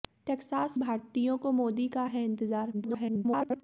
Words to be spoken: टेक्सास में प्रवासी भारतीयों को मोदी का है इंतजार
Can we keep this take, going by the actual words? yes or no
no